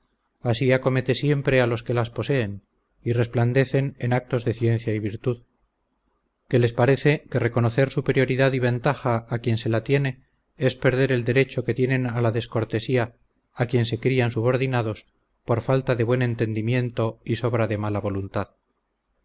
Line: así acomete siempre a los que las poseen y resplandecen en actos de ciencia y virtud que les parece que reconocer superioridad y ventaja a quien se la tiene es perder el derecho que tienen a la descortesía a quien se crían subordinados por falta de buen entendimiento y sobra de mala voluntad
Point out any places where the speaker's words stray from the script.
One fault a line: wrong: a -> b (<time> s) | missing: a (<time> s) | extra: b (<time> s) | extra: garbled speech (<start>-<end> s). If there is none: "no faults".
no faults